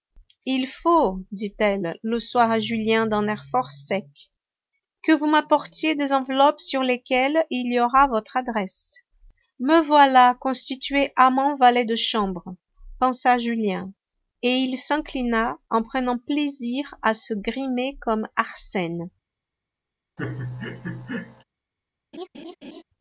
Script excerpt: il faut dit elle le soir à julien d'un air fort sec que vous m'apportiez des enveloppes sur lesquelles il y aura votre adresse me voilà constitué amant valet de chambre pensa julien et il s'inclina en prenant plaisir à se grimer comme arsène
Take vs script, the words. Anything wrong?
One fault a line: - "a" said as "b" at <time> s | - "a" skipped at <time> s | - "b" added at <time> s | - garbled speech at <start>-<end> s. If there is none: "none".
none